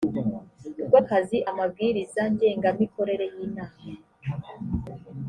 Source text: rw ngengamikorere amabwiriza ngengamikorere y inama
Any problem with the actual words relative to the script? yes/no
yes